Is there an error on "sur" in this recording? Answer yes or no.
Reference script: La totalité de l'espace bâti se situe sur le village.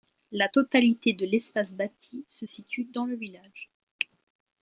yes